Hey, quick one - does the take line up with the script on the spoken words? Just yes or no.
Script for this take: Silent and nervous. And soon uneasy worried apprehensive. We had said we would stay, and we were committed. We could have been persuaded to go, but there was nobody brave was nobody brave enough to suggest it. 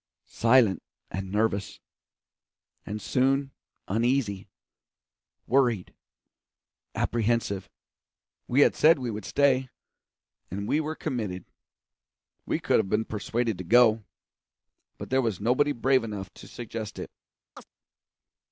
no